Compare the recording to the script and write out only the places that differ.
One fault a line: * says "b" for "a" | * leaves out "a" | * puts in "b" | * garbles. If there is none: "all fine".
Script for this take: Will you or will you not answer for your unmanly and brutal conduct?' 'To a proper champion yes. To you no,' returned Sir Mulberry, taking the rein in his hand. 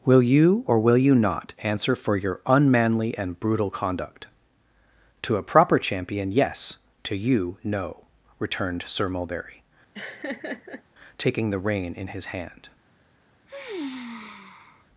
all fine